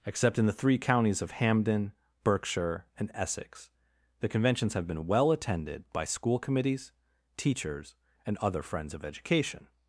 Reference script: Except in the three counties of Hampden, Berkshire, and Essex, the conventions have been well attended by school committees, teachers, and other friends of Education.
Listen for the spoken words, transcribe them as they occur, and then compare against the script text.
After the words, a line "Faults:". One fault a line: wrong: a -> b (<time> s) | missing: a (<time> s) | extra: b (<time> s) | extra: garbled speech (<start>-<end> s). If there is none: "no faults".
Except in the three counties of Hampden, Berkshire, and Essex, the conventions have been well attended by school committees, teachers, and other friends of Education.
Faults:
no faults